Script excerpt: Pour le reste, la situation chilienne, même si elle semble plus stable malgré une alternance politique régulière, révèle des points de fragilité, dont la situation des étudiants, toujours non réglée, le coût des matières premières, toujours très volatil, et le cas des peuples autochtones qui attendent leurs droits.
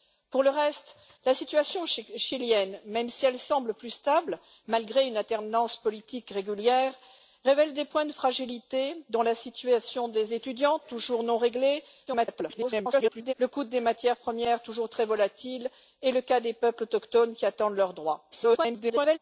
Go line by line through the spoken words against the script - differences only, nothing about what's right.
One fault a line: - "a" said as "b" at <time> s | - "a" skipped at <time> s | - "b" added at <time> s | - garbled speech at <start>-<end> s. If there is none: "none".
- garbled speech at 12.1-13.3 s
- garbled speech at 18.3-19.2 s